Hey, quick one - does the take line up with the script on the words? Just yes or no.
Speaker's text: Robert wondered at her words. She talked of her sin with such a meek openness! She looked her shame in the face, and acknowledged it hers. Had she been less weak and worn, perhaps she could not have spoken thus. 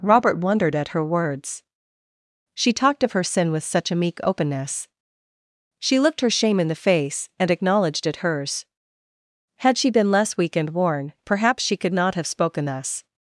yes